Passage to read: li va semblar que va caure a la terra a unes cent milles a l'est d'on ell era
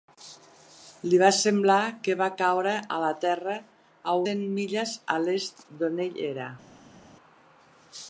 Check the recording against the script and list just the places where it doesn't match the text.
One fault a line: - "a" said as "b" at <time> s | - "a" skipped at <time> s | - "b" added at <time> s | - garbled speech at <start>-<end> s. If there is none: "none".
- "unes" skipped at 4.2 s